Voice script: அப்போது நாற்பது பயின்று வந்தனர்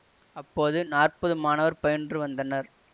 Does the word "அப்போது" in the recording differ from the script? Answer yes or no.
no